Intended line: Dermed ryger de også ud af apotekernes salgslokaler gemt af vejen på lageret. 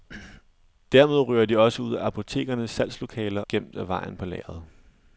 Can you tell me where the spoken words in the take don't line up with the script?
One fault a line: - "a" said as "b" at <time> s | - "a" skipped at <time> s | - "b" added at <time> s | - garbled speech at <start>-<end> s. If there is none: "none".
none